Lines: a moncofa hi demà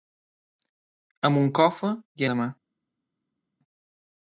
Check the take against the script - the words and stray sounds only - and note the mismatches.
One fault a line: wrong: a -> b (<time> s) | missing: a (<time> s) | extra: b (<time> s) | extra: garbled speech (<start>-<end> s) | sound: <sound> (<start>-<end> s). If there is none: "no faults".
no faults